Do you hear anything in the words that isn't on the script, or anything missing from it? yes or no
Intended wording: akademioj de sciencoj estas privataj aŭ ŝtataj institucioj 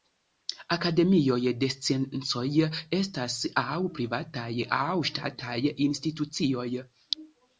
yes